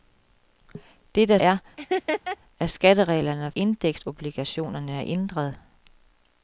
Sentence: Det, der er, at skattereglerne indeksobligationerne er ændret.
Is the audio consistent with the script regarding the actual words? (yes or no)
yes